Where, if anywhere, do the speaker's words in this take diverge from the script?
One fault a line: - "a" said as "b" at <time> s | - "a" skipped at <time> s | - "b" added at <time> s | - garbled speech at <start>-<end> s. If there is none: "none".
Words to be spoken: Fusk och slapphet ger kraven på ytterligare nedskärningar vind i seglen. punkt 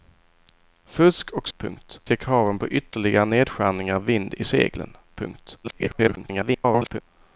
- "slapphet" said as "punkt" at 1.6 s
- garbled speech at 5.6-7.0 s